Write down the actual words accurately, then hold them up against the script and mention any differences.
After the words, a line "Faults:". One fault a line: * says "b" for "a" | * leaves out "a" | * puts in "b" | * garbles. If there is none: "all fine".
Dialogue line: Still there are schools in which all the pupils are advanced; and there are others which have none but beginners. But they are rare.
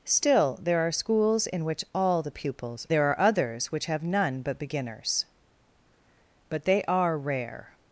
Still there are schools in which all the pupils there are others which have none but beginners. But they are rare.
Faults:
* leaves out "are advanced and"